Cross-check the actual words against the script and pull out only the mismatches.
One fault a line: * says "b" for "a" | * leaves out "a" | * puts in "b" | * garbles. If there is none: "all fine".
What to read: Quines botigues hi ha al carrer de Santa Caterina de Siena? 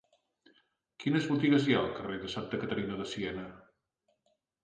all fine